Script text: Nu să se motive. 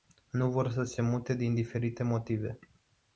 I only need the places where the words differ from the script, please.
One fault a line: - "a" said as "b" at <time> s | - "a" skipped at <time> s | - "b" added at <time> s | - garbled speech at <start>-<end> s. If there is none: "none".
- "vor" added at 0.5 s
- "mute din diferite" added at 1.0 s